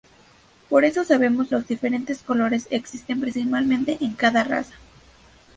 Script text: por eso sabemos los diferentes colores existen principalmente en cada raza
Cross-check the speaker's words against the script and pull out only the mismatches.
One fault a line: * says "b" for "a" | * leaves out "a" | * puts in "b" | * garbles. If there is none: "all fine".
all fine